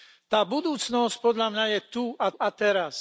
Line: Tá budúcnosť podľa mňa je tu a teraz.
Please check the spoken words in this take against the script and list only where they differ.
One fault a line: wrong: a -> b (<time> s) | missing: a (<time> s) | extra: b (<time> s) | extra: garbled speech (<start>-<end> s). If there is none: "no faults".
extra: a (2.4 s)